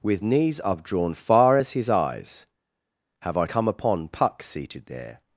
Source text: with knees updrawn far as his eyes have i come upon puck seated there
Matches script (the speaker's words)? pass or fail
pass